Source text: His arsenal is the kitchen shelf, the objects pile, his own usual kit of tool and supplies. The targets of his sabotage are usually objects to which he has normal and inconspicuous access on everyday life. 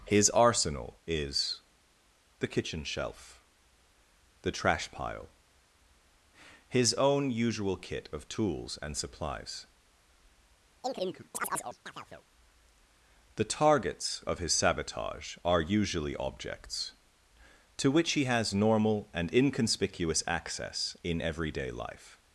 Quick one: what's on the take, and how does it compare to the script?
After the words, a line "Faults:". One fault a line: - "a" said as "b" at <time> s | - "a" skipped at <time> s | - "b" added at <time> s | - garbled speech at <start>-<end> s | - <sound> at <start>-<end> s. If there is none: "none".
His arsenal is the kitchen shelf, the trash pile, his own usual kit of tools and supplies. The targets of his sabotage are usually objects to which he has normal and inconspicuous access in everyday life.
Faults:
- "objects" said as "trash" at 4.5 s
- "tool" said as "tools" at 8.3 s
- chirp at 10.8-12.2 s
- "on" said as "in" at 21.0 s